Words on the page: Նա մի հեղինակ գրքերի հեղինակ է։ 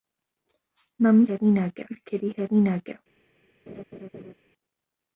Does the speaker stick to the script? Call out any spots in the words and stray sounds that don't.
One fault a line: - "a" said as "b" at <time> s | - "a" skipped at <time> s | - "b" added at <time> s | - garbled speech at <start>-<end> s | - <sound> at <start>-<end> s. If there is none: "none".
- laugh at 3.7-4.3 s